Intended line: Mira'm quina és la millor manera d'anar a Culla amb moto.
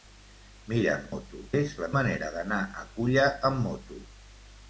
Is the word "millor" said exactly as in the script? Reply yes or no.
no